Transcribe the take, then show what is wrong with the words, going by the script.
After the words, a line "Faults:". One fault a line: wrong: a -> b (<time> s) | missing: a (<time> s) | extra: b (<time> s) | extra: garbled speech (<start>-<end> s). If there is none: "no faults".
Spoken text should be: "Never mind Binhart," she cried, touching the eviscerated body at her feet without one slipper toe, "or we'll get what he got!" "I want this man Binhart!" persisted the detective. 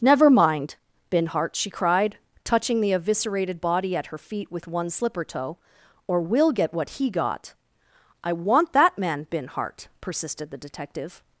"Never mind Binhart," she cried, touching the eviscerated body at her feet with one slipper toe, "or we'll get what he got!" "I want that man Binhart!" persisted the detective.
Faults:
wrong: without -> with (4.5 s)
wrong: this -> that (8.7 s)